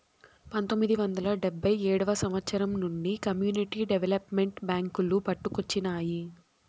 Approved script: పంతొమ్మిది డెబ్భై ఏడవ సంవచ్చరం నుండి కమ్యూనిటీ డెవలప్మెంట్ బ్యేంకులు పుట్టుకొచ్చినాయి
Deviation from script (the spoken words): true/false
true